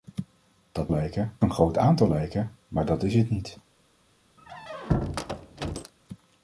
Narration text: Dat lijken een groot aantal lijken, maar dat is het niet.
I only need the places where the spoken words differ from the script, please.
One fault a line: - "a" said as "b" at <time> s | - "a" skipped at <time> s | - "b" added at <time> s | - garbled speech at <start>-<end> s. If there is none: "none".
none